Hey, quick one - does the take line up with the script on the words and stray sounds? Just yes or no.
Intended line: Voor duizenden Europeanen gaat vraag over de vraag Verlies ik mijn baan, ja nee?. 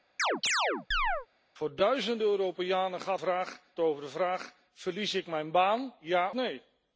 no